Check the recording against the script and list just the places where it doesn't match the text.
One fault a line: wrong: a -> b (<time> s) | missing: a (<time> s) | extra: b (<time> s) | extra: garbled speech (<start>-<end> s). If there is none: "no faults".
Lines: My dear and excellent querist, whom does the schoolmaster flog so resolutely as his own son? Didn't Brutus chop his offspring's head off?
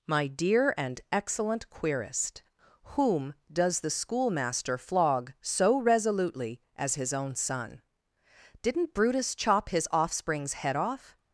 no faults